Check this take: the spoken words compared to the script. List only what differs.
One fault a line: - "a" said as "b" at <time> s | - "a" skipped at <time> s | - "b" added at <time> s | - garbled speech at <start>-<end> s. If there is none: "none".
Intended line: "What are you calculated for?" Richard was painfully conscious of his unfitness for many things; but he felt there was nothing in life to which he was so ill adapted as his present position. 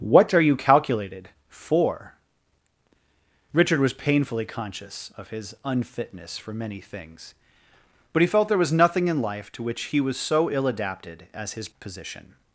- "present" skipped at 11.7 s